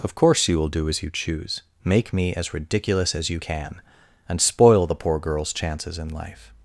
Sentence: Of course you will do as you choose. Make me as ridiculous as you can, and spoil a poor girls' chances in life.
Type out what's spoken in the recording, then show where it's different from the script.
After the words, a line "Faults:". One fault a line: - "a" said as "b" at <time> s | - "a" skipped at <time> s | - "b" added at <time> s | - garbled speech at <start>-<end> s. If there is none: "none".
Of course you will do as you choose. Make me as ridiculous as you can, and spoil the poor girls' chances in life.
Faults:
- "a" said as "the" at 4.8 s